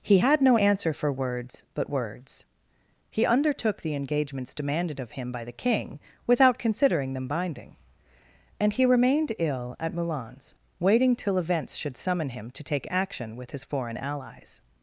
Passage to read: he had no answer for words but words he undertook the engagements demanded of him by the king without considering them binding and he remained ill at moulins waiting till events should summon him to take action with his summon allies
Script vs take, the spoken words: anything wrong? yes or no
yes